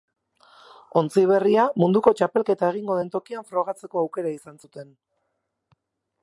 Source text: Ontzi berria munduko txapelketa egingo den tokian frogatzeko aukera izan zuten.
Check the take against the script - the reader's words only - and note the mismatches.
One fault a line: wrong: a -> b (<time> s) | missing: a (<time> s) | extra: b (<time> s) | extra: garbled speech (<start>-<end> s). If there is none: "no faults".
no faults